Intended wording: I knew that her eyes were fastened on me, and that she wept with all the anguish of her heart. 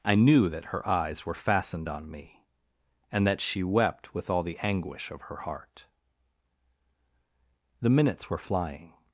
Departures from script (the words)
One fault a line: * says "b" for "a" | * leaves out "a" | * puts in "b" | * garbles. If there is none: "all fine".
* puts in "The minutes were flying"